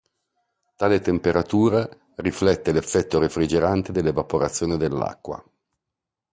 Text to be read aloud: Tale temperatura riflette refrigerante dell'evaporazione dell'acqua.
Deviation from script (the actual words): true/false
true